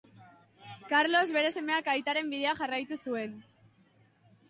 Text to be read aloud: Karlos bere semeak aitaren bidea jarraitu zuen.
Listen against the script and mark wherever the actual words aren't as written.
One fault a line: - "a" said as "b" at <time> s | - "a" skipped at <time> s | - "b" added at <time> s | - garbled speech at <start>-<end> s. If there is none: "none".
none